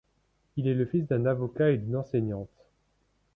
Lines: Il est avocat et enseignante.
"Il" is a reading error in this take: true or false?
false